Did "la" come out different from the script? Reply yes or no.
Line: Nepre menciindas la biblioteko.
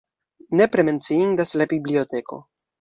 no